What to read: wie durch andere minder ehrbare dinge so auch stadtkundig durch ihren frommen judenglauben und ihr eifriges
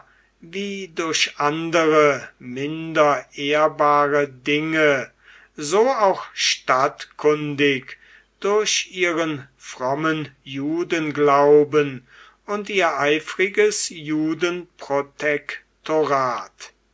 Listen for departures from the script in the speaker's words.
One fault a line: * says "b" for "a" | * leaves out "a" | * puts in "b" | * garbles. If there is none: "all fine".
all fine